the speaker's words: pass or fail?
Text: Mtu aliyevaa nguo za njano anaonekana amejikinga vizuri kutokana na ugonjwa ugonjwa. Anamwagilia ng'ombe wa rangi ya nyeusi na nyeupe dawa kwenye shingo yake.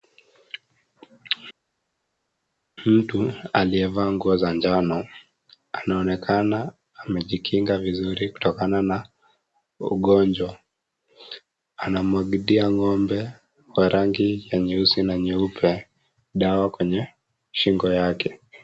fail